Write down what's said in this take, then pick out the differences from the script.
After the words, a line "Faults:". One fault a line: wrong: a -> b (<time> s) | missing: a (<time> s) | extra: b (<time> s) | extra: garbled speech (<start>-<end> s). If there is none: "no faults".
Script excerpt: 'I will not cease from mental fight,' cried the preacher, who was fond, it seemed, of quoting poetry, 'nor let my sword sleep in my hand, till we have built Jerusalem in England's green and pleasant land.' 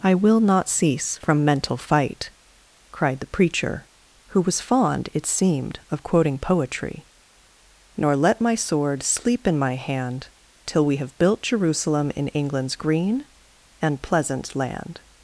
'I will not cease from mental fight,' cried the preacher, who was fond, it seemed, of quoting poetry, 'nor let my sword sleep in my hand, till we have built Jerusalem in England's green and pleasant land.'
Faults:
no faults